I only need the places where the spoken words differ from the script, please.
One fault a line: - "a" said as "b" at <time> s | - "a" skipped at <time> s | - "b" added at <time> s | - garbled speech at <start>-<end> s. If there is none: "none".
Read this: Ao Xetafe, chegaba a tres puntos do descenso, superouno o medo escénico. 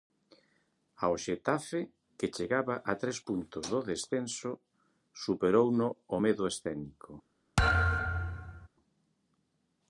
- "que" added at 2.2 s